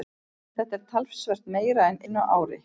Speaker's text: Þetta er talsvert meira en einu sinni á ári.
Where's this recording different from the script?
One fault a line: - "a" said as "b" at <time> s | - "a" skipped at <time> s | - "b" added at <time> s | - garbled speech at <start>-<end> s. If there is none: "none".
- "einu" skipped at 2.0 s